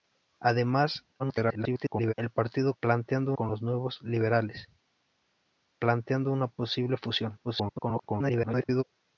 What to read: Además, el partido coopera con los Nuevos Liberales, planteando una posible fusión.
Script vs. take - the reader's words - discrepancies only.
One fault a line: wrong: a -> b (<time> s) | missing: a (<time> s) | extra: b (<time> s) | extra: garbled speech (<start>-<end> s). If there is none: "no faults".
extra: garbled speech (1.2-2.1 s)
wrong: coopera -> planteando (2.8 s)
extra: garbled speech (7.4-8.8 s)